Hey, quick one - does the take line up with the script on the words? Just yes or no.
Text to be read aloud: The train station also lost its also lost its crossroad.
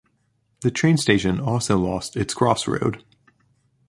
no